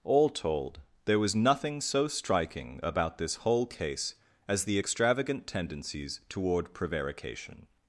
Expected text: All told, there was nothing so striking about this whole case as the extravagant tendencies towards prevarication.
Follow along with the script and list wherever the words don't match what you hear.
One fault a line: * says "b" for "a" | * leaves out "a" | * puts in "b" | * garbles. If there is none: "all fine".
* says "toward" for "towards"